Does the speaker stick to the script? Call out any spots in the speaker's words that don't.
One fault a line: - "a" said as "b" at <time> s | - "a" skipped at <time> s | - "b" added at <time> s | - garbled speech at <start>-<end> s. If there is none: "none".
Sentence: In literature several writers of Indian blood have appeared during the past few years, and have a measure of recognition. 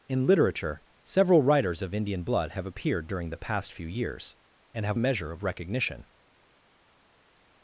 none